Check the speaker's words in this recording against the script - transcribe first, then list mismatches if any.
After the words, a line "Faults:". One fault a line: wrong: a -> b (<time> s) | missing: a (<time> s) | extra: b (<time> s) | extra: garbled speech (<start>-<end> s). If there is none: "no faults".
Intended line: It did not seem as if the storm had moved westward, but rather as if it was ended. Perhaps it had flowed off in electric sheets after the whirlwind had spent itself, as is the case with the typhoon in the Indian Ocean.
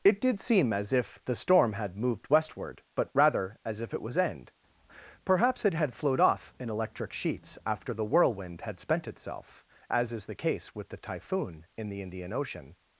It did seem as if the storm had moved westward, but rather as if it was end. Perhaps it had flowed off in electric sheets after the whirlwind had spent itself, as is the case with the typhoon in the Indian Ocean.
Faults:
missing: not (0.4 s)
wrong: ended -> end (4.2 s)